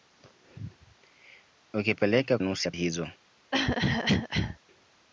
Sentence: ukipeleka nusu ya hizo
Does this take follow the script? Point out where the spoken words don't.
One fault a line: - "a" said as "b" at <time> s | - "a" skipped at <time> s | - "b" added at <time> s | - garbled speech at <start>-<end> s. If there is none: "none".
none